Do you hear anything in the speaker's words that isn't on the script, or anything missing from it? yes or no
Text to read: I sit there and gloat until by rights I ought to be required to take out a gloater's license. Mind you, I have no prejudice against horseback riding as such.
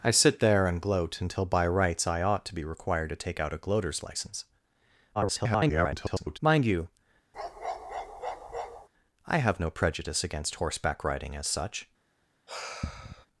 yes